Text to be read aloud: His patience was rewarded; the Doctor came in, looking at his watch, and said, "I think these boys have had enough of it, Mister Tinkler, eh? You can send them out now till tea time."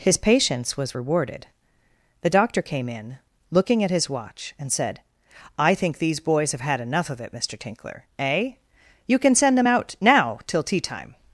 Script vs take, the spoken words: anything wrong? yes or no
no